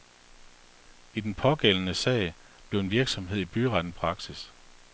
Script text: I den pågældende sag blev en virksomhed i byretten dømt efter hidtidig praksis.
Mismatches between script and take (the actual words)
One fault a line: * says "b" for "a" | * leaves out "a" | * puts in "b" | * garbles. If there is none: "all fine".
* leaves out "dømt efter hidtidig"